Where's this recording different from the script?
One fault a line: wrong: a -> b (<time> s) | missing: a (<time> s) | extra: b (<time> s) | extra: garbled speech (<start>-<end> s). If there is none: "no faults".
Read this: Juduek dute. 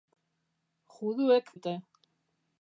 no faults